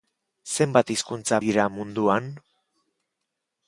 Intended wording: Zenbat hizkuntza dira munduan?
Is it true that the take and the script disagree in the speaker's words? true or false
false